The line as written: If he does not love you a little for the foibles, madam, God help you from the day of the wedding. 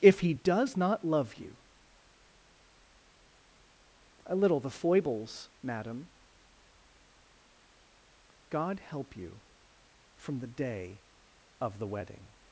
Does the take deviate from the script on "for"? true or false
true